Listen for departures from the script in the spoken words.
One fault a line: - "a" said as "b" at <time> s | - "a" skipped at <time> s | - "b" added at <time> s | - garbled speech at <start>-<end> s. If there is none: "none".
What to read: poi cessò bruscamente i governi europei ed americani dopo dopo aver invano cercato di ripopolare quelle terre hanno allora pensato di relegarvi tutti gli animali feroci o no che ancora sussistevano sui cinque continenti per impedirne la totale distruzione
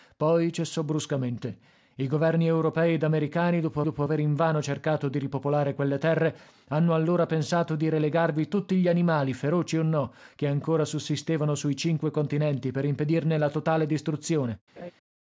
none